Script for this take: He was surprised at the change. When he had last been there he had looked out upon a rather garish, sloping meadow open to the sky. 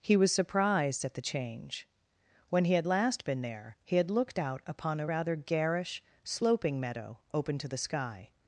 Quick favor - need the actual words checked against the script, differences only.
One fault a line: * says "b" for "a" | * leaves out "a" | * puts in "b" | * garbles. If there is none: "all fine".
all fine